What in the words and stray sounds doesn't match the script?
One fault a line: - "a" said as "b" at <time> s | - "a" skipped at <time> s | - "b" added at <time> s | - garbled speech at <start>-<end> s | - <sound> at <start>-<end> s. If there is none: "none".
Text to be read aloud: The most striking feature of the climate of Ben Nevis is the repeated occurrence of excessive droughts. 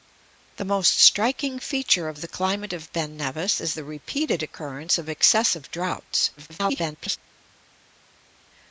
- garbled speech at 6.4-7.2 s